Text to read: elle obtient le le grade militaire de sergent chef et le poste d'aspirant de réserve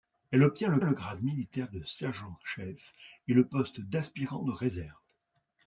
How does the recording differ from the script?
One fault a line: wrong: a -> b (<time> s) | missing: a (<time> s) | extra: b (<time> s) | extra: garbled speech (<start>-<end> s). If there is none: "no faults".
no faults